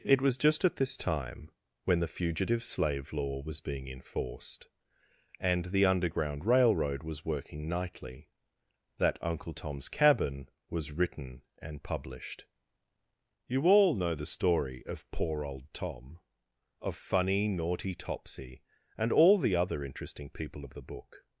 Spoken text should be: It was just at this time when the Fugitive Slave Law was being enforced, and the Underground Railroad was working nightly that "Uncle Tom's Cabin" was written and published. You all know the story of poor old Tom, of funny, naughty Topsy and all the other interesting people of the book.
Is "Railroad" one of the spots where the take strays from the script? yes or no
no